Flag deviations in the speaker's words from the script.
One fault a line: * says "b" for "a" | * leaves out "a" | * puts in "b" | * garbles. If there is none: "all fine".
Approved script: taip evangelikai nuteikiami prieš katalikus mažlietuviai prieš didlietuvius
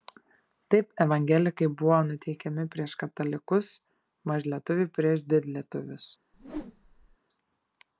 * puts in "buvo"